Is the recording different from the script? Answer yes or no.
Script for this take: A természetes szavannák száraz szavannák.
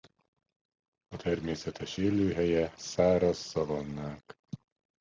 yes